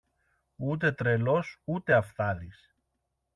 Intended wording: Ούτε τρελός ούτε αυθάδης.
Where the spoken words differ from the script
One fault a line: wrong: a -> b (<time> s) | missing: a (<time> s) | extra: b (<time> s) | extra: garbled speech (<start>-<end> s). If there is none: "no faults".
no faults